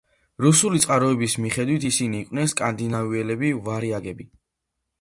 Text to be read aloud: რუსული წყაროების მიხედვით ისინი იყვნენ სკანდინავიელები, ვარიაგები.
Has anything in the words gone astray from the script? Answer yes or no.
no